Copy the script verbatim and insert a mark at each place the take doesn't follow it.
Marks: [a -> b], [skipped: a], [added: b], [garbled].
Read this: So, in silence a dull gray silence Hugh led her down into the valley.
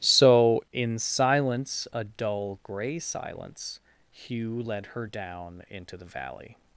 So, in silence a dull gray silence Hugh led her down into the valley.